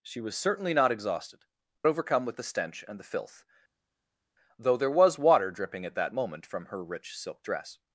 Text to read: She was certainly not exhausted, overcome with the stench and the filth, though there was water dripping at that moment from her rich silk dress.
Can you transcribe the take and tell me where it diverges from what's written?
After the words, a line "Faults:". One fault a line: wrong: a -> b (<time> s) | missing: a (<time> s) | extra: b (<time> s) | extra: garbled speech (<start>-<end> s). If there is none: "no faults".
She was certainly not exhausted, overcome with the stench and the filth, though there was water dripping at that moment from her rich silk dress.
Faults:
no faults